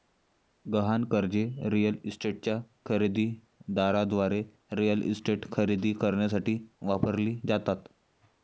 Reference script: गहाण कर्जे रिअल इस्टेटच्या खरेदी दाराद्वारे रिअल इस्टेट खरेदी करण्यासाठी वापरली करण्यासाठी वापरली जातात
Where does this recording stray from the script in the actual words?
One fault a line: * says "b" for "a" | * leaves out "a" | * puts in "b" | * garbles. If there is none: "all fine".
* leaves out "करण्यासाठी वापरली"